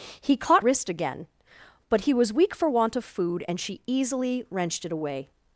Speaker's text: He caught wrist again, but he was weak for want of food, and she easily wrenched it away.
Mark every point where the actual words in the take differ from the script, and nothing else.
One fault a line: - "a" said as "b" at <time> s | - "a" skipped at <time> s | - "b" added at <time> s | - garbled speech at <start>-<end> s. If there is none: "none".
none